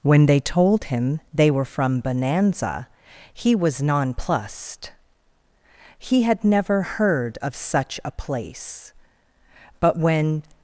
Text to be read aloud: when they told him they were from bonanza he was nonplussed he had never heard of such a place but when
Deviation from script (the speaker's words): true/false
false